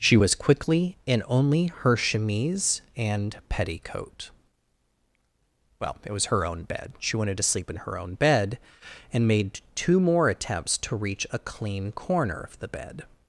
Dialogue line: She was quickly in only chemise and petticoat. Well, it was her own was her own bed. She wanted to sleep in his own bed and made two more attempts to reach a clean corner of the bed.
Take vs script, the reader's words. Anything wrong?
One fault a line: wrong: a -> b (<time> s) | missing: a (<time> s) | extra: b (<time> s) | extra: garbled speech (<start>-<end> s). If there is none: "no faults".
extra: her (1.8 s)
missing: was her own (6.6 s)
wrong: his -> her (7.8 s)